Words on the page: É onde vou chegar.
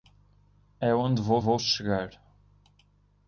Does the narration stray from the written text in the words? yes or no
yes